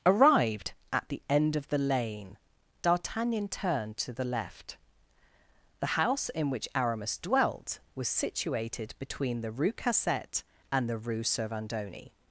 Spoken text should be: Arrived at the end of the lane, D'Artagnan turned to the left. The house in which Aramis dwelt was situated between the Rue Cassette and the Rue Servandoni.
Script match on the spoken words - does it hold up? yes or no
yes